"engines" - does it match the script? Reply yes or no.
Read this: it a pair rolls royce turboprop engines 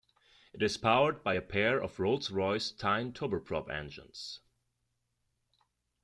yes